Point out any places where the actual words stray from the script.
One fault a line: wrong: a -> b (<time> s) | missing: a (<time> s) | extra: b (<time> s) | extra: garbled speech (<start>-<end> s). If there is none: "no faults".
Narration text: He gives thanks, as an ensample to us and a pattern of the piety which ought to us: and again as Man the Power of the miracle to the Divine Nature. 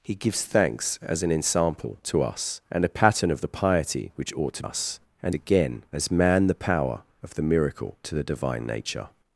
no faults